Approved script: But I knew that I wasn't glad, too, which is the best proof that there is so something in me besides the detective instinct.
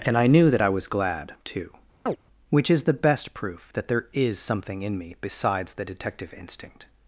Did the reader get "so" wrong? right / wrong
wrong